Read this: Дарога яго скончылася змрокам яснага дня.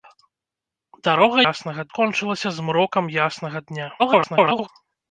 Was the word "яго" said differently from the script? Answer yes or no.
yes